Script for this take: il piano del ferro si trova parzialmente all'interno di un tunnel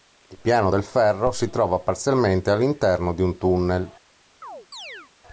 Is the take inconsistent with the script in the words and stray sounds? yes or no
yes